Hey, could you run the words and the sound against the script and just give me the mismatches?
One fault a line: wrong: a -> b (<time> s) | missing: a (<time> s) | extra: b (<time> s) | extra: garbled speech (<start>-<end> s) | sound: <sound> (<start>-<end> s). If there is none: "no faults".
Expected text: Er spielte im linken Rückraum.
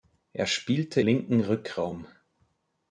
missing: im (1.0 s)